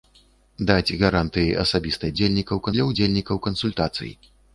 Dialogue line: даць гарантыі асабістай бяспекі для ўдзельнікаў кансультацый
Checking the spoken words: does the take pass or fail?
fail